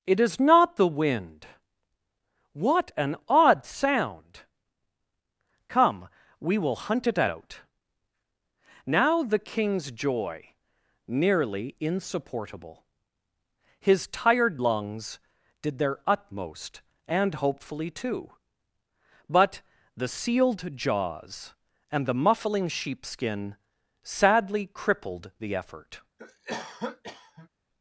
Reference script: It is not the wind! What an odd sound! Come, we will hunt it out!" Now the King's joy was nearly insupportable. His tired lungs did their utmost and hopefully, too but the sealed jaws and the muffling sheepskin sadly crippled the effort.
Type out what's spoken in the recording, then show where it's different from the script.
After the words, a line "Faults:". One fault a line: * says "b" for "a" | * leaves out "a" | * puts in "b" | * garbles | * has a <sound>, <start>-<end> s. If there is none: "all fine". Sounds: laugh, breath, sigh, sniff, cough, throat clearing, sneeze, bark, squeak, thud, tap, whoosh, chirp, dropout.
It is not the wind! What an odd sound! Come, we will hunt it out!" Now the King's joy nearly insupportable. His tired lungs did their utmost and hopefully, too but the sealed jaws and the muffling sheepskin sadly crippled the effort.
Faults:
* leaves out "was"
* has a cough, 26.2-27.5 s